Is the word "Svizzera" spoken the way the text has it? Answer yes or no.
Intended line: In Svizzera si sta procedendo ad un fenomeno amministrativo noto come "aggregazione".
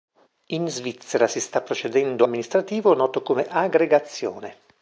yes